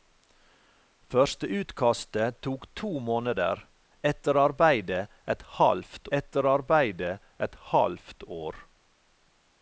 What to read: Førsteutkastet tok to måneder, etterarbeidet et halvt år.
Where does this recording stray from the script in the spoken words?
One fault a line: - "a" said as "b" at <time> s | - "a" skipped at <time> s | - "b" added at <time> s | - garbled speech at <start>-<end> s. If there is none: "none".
- "etterarbeidet et halvt" added at 6.2 s